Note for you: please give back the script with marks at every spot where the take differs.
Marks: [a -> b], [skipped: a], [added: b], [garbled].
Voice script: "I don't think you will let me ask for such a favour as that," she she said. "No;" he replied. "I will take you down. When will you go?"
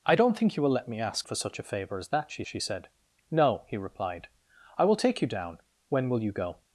"I don't think you will let me ask for such a favour as that," she she said. "No;" he replied. "I will take you down. When will you go?"